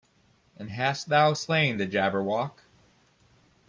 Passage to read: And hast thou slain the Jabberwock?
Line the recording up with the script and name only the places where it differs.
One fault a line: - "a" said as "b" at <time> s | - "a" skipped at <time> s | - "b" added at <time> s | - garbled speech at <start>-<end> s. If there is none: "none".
none